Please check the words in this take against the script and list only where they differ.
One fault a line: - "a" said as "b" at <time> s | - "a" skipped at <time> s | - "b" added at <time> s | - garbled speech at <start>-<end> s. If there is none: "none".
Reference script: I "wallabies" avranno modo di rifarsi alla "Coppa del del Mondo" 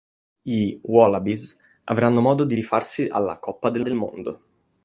none